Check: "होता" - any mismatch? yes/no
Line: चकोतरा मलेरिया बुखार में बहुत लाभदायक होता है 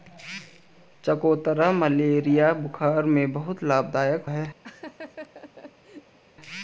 yes